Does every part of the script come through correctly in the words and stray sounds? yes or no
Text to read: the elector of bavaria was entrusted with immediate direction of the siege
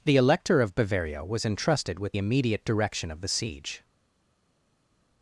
yes